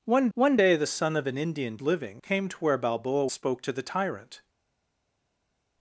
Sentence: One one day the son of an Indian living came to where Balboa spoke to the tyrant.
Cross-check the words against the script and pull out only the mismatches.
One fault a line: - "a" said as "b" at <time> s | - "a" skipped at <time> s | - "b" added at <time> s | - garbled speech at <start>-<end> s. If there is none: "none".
none